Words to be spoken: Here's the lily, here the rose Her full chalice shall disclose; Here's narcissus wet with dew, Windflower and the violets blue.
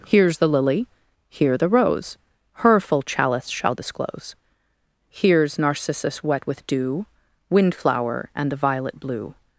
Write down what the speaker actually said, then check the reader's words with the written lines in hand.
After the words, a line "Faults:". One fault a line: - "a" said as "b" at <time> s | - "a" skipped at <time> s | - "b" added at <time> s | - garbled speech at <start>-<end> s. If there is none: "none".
Here's the lily, here the rose Her full chalice shall disclose; Here's narcissus wet with dew, Windflower and the violet blue.
Faults:
- "violets" said as "violet" at 8.6 s